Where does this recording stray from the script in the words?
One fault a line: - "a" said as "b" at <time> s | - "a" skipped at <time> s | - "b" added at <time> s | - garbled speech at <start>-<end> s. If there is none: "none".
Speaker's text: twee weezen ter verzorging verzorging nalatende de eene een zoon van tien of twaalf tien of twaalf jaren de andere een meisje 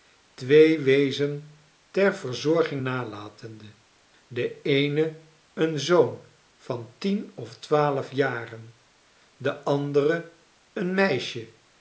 - "verzorging" skipped at 2.8 s
- "tien of twaalf" skipped at 8.1 s